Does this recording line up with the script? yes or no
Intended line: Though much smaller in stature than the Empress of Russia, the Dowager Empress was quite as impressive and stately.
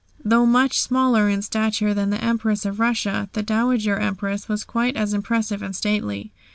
yes